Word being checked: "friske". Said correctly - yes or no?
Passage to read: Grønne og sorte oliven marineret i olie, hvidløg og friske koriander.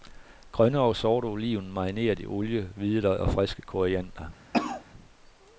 yes